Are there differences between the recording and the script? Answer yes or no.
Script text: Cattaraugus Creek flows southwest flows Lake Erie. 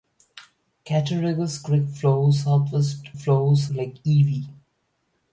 no